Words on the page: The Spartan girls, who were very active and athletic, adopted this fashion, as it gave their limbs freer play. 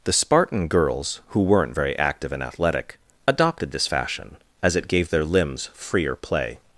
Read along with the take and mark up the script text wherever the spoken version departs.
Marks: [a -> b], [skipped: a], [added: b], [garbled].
The Spartan girls, who [were -> weren't] very active and athletic, adopted this fashion, as it gave their limbs freer play.